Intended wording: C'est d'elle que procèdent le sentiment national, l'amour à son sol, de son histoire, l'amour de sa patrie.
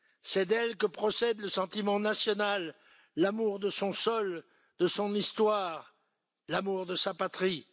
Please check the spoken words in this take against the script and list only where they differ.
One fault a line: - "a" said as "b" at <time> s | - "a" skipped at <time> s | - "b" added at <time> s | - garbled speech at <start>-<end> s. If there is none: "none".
- "à" said as "de" at 3.6 s